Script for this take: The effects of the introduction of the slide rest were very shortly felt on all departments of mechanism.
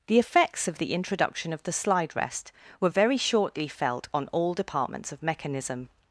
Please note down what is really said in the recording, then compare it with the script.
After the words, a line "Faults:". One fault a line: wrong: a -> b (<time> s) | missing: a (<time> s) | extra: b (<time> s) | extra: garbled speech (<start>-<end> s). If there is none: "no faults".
The effects of the introduction of the slide rest were very shortly felt on all departments of mechanism.
Faults:
no faults